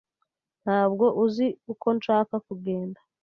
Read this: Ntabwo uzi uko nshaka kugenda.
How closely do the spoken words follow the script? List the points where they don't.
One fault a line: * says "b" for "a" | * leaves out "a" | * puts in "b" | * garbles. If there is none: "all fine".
all fine